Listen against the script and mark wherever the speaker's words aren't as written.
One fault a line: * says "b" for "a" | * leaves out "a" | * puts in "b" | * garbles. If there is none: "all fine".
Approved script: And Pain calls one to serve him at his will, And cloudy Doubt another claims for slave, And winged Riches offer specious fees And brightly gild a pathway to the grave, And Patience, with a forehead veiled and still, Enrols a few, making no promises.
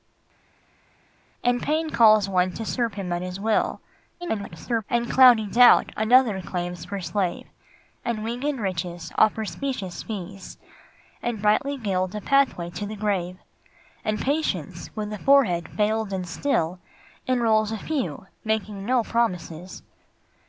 * garbles